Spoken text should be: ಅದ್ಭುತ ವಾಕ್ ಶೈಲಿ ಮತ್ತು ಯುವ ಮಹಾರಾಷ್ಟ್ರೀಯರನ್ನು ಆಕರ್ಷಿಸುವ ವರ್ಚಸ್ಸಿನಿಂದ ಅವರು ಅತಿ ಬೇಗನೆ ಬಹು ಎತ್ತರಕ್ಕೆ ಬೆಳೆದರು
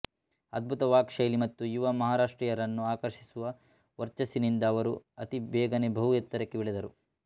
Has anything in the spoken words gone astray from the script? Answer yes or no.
no